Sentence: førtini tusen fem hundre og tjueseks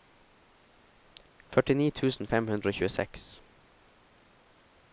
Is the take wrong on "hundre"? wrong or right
right